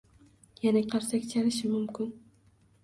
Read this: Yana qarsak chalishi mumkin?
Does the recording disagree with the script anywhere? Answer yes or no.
no